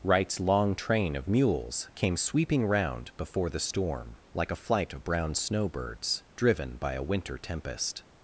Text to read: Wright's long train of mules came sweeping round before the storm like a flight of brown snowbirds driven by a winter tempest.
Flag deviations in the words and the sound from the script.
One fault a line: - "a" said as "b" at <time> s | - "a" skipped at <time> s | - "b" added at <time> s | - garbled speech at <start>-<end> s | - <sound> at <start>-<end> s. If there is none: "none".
none